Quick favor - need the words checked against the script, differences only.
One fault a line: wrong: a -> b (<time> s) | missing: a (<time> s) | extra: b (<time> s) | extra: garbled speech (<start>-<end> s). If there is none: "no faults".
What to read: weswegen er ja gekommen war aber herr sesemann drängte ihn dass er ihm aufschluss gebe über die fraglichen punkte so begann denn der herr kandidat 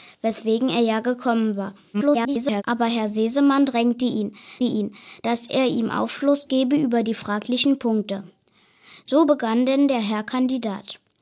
extra: garbled speech (1.9-2.6 s)
extra: ihn (4.6 s)